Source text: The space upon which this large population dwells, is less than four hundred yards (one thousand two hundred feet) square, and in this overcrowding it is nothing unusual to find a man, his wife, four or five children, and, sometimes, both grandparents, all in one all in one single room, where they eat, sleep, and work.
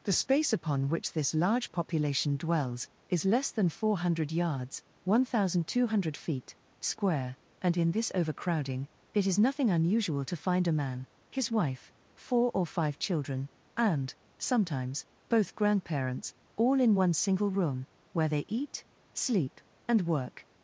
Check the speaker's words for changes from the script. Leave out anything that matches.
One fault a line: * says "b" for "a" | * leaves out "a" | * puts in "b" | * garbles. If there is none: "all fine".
* leaves out "all in one"